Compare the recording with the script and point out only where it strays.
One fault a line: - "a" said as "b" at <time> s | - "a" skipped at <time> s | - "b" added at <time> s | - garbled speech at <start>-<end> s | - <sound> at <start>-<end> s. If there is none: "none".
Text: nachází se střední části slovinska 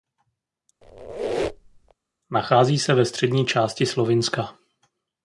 - squeak at 0.8-1.9 s
- "ve" added at 2.9 s